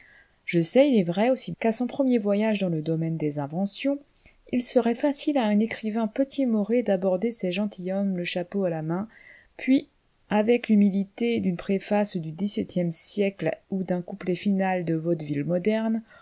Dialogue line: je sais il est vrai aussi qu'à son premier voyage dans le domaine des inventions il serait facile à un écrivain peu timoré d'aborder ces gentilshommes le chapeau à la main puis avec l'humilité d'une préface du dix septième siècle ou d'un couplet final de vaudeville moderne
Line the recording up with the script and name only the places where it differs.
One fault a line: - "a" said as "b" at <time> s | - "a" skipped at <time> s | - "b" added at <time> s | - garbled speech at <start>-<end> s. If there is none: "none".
none